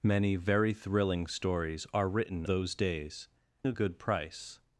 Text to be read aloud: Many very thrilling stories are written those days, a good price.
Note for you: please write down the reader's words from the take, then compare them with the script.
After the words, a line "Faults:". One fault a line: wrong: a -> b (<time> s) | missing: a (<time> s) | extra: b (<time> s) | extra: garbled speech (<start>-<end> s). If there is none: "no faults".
Many very thrilling stories are written those days, a good price.
Faults:
no faults